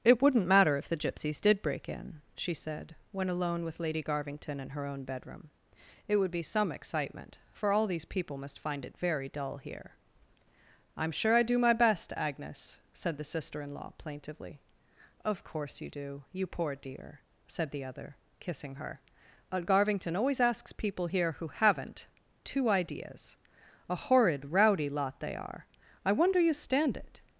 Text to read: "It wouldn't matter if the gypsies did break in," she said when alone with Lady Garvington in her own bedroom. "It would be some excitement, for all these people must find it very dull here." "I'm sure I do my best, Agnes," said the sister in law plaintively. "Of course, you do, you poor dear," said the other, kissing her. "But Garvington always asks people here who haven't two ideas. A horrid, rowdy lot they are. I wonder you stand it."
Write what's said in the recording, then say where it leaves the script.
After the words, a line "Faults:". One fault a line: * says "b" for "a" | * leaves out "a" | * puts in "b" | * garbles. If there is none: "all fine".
"It wouldn't matter if the gypsies did break in," she said when alone with Lady Garvington in her own bedroom. "It would be some excitement, for all these people must find it very dull here." "I'm sure I do my best, Agnes," said the sister in law plaintively. "Of course, you do, you poor dear," said the other, kissing her. "But Garvington always asks people here who haven't two ideas. A horrid, rowdy lot they are. I wonder you stand it."
Faults:
all fine